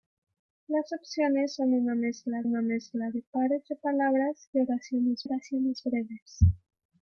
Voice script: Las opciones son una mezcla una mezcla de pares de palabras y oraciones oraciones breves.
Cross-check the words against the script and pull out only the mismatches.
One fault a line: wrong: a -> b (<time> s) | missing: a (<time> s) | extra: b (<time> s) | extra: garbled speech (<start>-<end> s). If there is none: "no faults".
no faults